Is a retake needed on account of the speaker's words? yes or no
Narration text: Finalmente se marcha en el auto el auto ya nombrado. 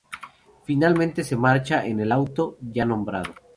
yes